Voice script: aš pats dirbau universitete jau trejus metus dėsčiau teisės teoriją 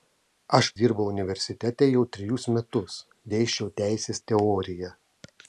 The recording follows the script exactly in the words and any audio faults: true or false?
false